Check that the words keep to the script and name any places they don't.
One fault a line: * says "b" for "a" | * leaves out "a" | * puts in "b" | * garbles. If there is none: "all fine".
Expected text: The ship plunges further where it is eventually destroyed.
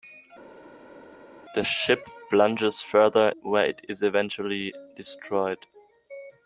all fine